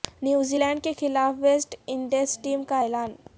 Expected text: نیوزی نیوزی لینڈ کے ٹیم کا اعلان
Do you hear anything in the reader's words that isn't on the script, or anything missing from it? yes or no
yes